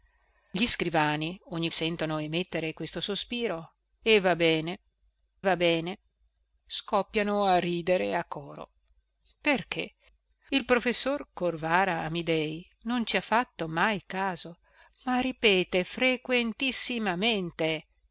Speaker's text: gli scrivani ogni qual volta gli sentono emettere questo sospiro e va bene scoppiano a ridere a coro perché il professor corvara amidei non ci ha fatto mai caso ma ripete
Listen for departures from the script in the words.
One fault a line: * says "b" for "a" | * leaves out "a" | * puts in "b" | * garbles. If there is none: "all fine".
* leaves out "qual volta gli"
* puts in "va bene"